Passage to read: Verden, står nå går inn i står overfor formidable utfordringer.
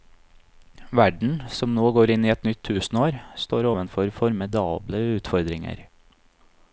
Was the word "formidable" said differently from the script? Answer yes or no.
no